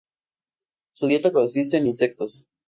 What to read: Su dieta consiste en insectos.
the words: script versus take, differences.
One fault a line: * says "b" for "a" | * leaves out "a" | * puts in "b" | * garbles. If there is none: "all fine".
all fine